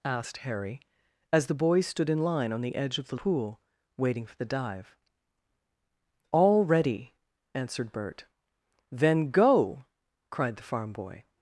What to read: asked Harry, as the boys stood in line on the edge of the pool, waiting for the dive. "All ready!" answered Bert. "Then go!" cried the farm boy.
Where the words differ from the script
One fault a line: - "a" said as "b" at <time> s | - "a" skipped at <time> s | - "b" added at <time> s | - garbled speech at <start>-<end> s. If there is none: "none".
none